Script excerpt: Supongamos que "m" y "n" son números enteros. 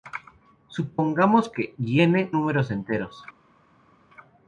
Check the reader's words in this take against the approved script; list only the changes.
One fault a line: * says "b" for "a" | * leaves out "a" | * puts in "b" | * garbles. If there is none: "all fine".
* leaves out "m"
* leaves out "son"